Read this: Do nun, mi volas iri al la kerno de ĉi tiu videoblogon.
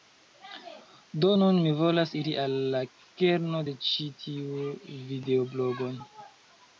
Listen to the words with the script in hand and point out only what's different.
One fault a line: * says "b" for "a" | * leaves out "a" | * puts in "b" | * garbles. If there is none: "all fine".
all fine